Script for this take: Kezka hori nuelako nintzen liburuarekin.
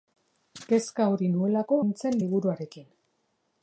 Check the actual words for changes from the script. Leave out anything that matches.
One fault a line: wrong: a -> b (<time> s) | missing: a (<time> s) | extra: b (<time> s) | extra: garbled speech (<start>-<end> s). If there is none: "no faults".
no faults